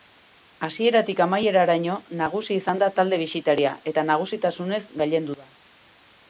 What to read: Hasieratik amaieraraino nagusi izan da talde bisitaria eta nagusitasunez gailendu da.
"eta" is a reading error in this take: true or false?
false